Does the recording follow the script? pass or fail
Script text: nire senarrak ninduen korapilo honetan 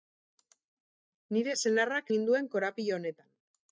pass